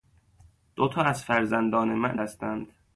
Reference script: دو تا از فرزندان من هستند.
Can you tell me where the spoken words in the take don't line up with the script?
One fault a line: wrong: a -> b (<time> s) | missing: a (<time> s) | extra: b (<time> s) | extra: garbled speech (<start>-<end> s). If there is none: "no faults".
no faults